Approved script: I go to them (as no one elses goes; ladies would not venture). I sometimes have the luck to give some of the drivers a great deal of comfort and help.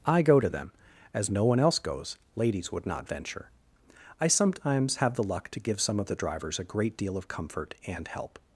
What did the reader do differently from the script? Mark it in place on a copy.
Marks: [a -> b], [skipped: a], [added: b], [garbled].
I go to them (as no one [elses -> else] goes; ladies would not venture). I sometimes have the luck to give some of the drivers a great deal of comfort and help.